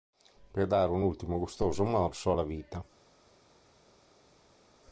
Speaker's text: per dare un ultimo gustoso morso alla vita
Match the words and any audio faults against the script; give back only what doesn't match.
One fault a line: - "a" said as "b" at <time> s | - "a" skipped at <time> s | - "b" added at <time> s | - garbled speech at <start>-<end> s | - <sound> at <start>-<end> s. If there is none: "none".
none